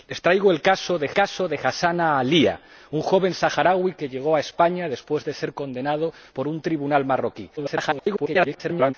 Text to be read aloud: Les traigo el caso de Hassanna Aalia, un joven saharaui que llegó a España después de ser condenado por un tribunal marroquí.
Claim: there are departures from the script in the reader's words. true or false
true